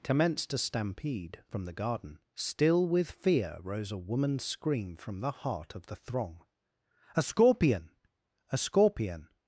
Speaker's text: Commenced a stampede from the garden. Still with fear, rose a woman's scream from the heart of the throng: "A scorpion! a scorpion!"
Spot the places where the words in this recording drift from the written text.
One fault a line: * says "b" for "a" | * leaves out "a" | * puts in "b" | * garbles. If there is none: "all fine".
all fine